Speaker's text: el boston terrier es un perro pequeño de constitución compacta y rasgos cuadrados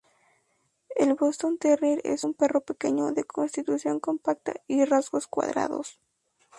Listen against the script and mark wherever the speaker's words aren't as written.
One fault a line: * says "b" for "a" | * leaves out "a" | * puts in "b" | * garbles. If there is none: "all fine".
all fine